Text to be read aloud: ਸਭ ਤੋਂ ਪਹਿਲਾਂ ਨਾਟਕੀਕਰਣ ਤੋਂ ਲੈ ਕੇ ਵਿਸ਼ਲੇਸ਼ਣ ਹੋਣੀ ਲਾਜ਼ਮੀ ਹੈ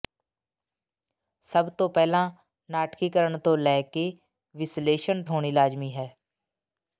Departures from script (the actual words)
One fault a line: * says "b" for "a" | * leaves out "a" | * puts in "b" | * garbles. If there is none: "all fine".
all fine